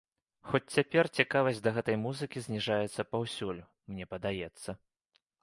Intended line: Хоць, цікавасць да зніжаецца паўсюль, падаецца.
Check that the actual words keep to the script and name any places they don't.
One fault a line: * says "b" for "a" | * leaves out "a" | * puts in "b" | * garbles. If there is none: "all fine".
* puts in "цяпер"
* puts in "гэтай музыкі"
* puts in "мне"